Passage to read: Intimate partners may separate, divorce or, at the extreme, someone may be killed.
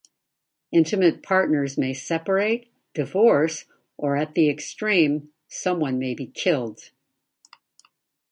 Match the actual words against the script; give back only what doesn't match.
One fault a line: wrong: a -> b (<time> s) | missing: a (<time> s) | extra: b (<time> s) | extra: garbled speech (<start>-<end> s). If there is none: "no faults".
no faults